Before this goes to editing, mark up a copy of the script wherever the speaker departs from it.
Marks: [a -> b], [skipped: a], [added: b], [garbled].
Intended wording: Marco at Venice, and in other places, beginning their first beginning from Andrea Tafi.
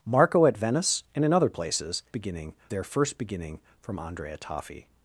Marco at Venice, and in other places, beginning their first beginning from Andrea Tafi.